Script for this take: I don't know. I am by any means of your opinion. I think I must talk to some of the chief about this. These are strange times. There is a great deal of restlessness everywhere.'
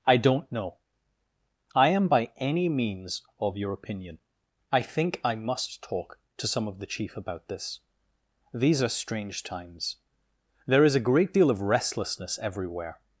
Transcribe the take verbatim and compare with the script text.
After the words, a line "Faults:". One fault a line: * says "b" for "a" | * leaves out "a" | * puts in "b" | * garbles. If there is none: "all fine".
I don't know. I am by any means of your opinion. I think I must talk to some of the chief about this. These are strange times. There is a great deal of restlessness everywhere.'
Faults:
all fine